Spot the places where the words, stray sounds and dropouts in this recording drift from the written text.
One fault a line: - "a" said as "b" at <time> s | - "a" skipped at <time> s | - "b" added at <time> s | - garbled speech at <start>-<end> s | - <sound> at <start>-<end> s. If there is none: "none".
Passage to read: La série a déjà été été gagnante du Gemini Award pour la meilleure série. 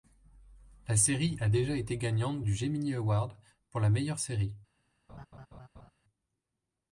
- "été" skipped at 2.0 s
- laugh at 5.1-5.9 s